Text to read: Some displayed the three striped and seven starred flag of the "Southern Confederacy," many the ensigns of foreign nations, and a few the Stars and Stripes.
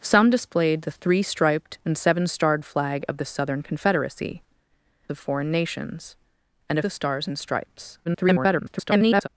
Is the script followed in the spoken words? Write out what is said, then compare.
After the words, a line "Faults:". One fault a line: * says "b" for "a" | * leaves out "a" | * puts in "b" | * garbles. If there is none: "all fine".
Some displayed the three striped and seven starred flag of the "Southern Confederacy," of foreign nations, and a the Stars and Stripes. [garbled]
Faults:
* leaves out "many the ensigns"
* leaves out "few"
* garbles